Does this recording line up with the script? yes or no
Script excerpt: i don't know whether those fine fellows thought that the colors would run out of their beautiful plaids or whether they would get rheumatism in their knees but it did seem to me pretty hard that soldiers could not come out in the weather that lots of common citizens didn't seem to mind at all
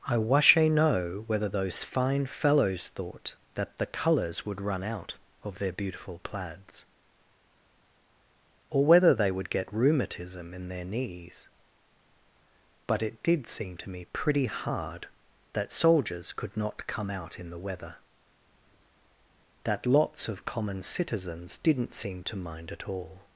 no